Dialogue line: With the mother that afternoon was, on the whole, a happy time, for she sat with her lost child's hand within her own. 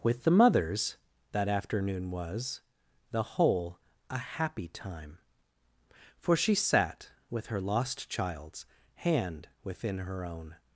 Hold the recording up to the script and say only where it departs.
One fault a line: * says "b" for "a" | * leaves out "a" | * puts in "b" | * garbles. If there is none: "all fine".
* says "mothers" for "mother"
* leaves out "on"